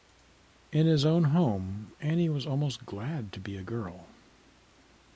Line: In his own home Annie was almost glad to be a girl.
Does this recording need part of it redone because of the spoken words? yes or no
no